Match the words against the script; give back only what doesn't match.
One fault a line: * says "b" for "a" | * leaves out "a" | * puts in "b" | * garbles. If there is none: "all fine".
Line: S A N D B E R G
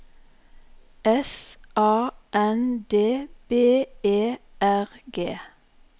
all fine